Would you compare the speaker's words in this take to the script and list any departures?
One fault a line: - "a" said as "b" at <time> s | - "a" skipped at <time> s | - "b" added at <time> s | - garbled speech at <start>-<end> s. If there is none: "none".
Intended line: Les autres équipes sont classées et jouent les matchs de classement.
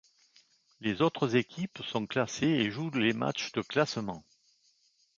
none